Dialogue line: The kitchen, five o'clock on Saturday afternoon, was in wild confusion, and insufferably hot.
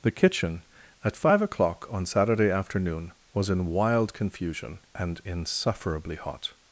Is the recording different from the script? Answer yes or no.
yes